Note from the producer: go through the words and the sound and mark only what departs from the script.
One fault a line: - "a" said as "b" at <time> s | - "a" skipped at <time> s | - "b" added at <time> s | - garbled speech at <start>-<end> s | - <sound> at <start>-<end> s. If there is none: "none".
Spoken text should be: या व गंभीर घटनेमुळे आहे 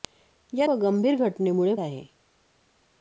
none